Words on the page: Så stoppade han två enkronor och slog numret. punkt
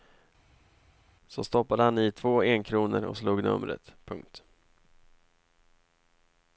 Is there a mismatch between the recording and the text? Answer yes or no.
yes